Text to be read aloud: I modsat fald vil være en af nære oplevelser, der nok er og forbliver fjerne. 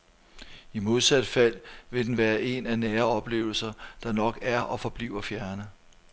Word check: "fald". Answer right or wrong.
right